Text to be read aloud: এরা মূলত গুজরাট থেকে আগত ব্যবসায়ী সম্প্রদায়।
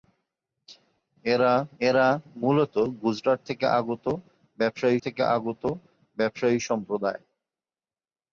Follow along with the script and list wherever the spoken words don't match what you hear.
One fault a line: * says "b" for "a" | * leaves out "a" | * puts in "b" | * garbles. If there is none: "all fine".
* puts in "এরা"
* puts in "থেকে আগত ব্যবসায়ী"